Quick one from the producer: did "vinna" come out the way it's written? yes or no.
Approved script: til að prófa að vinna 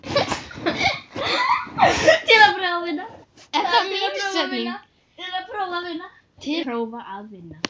yes